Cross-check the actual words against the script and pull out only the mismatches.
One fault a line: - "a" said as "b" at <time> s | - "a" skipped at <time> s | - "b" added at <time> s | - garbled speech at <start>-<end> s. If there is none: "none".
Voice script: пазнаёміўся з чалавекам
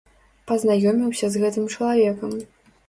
- "гэтым" added at 1.4 s